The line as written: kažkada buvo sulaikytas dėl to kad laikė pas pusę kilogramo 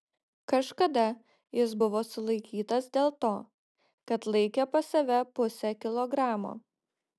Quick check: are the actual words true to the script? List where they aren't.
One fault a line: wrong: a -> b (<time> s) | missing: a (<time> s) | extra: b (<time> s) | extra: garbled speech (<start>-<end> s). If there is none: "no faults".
extra: jis (1.6 s)
extra: save (5.0 s)